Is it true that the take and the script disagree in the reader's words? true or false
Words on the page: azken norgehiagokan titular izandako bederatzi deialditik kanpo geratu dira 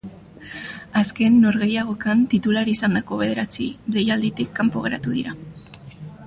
false